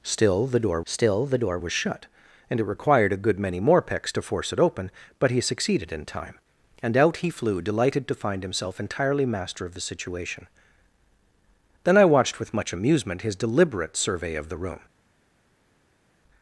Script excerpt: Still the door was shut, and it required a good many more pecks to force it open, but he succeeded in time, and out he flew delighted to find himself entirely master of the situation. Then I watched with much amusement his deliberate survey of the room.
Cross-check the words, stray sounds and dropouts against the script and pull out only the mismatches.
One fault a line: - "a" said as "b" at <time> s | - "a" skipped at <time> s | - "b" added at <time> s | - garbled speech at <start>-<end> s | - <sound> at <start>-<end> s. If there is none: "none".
- "still the door" added at 0.8 s